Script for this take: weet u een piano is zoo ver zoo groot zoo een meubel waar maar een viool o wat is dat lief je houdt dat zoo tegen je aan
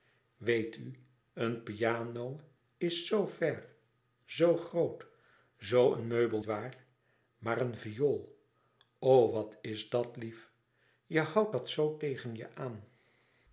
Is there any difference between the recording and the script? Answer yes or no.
no